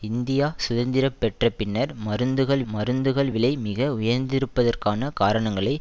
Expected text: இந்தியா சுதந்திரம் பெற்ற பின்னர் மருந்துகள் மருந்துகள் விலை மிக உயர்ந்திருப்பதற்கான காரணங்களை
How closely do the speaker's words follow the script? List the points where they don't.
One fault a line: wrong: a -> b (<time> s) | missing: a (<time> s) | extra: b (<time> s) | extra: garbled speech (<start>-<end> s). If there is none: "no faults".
no faults